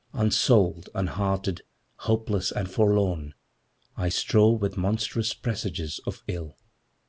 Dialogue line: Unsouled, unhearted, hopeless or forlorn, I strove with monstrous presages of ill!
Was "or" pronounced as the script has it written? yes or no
no